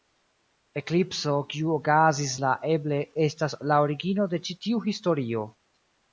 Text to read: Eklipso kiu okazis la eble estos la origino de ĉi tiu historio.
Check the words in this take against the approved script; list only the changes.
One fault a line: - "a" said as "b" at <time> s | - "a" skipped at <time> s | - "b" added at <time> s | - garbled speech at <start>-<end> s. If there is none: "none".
- "estos" said as "estas" at 3.3 s